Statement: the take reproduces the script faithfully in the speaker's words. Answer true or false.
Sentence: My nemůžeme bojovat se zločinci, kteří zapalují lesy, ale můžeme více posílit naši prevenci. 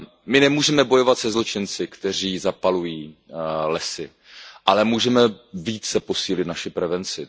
true